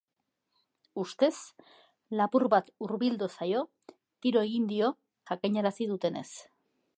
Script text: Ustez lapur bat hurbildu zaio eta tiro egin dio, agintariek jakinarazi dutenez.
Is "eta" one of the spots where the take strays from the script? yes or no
yes